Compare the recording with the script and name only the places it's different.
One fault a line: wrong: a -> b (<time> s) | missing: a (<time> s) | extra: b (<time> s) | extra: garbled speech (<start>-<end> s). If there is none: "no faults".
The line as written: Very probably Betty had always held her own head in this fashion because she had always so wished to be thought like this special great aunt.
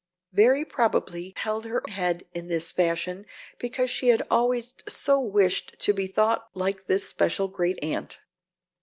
missing: Betty had always (1.4 s)
missing: own (1.8 s)